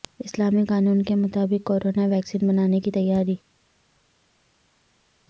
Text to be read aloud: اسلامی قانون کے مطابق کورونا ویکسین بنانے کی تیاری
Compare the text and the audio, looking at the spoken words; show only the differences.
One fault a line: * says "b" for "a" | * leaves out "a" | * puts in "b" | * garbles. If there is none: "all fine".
all fine